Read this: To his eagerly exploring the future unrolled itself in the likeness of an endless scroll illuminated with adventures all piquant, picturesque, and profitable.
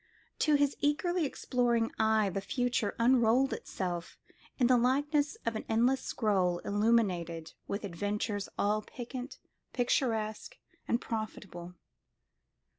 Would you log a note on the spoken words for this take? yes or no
yes